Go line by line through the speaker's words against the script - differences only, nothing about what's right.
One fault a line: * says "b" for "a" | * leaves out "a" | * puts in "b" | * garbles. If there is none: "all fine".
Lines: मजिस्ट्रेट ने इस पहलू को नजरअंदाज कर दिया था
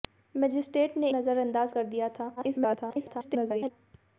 * leaves out "इस पहलू को"
* garbles